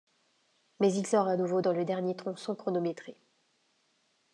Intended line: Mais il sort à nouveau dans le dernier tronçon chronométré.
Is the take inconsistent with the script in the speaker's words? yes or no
no